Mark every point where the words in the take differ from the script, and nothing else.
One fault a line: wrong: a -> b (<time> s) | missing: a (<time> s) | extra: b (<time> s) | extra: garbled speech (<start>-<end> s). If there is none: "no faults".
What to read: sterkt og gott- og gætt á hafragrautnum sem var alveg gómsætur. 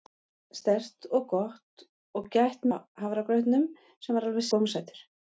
no faults